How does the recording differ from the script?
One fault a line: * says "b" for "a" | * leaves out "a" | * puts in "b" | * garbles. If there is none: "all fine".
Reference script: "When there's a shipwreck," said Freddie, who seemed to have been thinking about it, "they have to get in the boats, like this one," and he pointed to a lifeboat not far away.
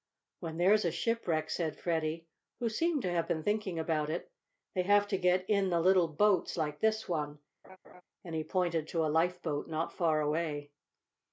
* puts in "little"